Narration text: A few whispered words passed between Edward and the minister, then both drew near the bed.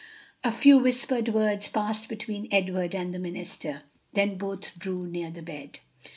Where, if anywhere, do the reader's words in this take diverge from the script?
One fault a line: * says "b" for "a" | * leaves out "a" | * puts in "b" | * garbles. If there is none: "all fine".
all fine